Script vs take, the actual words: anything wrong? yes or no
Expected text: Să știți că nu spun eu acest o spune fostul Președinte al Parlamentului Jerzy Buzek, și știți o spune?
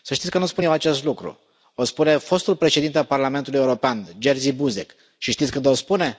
yes